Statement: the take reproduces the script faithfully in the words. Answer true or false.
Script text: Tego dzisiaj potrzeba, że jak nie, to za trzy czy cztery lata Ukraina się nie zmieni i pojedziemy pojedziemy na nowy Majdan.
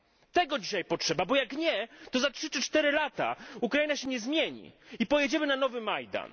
false